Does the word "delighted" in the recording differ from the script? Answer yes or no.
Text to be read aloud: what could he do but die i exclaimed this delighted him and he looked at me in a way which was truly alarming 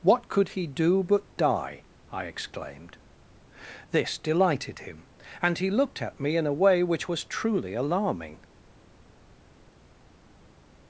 no